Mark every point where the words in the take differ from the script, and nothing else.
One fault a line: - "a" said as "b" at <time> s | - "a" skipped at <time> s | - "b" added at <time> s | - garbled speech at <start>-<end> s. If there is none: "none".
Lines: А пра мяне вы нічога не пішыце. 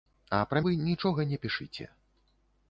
- "мяне" skipped at 0.6 s